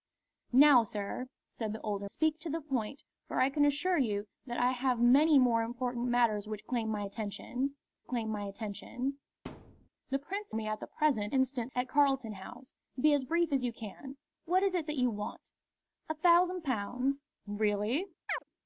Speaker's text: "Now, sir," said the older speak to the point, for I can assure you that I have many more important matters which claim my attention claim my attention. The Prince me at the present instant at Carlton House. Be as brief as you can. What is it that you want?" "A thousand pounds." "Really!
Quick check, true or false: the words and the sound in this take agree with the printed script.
false